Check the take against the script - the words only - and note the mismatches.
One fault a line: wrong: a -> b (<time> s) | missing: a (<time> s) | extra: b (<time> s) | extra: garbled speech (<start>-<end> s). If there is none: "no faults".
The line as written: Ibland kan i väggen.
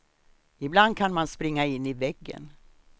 extra: man springa in (1.1 s)